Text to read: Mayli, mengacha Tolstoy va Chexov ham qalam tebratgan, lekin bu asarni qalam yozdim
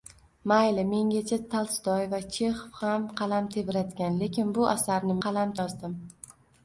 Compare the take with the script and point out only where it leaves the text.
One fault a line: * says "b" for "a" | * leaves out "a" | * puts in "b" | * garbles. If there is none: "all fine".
all fine